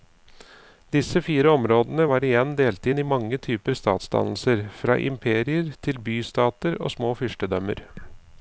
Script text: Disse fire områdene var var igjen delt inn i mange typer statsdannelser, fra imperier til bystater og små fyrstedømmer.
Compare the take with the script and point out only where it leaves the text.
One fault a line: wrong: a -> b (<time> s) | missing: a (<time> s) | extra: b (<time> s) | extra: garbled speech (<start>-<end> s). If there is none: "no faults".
missing: var (2.3 s)